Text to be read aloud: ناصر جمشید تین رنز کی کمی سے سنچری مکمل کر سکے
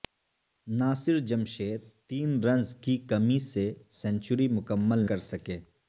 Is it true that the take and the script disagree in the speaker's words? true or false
false